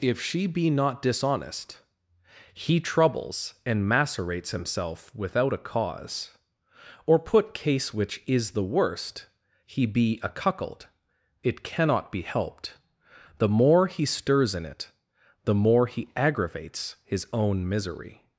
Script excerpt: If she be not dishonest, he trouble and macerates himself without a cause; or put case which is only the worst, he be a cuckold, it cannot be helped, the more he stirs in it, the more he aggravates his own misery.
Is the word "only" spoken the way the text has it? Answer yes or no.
no